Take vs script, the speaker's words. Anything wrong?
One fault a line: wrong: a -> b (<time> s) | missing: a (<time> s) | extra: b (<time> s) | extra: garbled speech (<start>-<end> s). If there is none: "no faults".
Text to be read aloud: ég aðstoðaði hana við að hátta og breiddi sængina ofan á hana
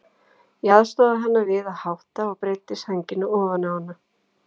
no faults